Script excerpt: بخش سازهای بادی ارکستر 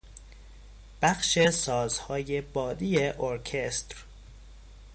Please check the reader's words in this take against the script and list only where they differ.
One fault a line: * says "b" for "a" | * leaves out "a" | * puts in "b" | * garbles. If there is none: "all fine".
all fine